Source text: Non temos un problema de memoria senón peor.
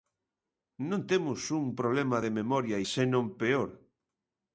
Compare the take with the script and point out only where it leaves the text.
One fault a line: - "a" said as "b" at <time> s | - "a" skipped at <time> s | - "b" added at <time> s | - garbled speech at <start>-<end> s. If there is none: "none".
none